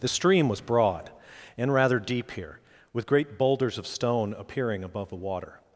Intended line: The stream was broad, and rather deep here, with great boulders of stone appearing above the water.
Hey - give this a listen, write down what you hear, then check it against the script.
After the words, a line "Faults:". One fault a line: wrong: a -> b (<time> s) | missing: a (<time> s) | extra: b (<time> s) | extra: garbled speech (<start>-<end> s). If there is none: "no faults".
The stream was broad, and rather deep here, with great boulders of stone appearing above the water.
Faults:
no faults